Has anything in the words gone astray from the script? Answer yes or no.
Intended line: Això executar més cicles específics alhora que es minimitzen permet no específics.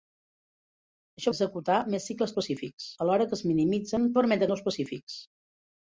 no